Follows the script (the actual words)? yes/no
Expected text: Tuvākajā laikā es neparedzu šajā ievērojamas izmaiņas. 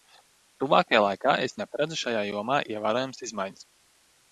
no